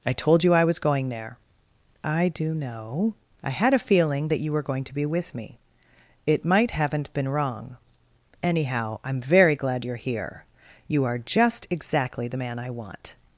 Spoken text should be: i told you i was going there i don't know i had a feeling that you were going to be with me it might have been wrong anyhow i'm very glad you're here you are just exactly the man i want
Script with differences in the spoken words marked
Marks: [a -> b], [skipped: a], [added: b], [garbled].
i told you i was going there i [don't -> do] know i had a feeling that you were going to be with me it might [have -> haven't] been wrong anyhow i'm very glad you're here you are just exactly the man i want